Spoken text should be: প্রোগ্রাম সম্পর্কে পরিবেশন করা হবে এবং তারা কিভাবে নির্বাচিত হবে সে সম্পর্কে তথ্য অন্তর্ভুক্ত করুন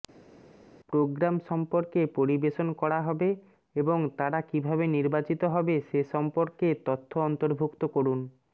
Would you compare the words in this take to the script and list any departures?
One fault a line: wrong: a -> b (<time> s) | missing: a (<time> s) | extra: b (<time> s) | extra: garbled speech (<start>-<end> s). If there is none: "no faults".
no faults